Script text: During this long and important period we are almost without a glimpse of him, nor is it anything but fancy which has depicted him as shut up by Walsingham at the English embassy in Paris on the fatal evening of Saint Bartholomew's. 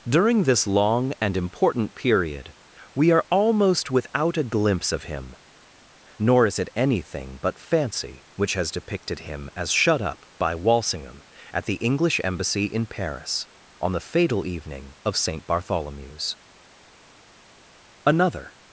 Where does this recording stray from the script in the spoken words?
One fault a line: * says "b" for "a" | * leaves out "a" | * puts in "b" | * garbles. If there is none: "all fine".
* puts in "Another"